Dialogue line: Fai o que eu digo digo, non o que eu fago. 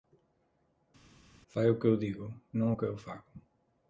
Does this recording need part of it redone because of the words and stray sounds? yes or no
yes